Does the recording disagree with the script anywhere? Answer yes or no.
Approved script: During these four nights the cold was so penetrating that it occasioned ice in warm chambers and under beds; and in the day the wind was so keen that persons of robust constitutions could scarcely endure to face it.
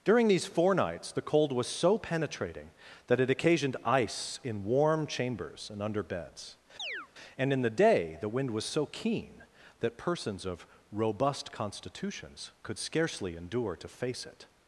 no